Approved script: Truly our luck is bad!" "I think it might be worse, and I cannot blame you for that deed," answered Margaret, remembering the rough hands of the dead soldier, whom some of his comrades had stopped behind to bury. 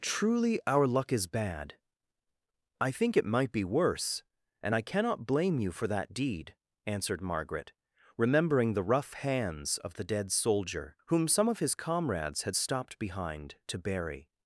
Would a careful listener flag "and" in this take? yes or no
no